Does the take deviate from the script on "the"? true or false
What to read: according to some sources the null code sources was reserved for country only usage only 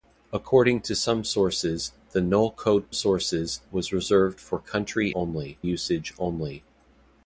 false